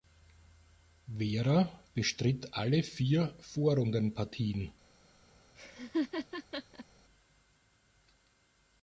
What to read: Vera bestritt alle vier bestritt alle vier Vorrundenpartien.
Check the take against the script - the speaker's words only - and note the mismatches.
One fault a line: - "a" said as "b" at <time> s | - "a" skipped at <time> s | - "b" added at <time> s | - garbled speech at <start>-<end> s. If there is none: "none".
- "bestritt alle vier" skipped at 3.4 s